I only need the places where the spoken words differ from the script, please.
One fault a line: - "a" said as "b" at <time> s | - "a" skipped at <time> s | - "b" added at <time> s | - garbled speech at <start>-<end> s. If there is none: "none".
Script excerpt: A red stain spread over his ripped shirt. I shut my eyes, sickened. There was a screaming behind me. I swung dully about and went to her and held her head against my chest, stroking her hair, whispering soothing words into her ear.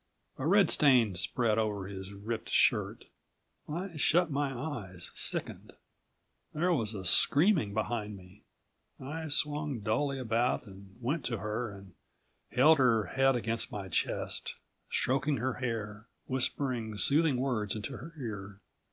none